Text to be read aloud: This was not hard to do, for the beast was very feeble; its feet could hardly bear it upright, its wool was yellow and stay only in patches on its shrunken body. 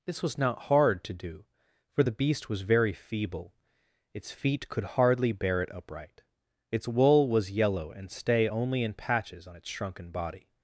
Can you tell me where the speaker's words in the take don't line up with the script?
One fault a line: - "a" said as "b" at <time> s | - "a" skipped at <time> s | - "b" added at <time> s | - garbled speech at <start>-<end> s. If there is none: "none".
none